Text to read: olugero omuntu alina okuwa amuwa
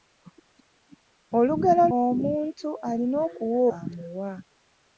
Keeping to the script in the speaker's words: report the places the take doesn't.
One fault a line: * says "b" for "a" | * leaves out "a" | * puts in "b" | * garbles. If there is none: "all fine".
all fine